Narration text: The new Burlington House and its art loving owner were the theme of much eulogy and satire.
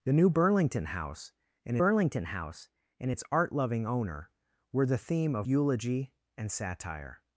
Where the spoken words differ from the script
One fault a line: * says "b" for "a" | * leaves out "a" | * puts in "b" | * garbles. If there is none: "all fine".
* puts in "Burlington House and"
* leaves out "much"